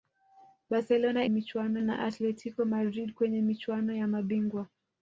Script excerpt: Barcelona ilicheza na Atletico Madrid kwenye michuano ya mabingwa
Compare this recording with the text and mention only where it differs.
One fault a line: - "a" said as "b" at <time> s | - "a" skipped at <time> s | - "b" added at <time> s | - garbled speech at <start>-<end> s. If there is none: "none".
- "ilicheza" said as "michuano" at 1.3 s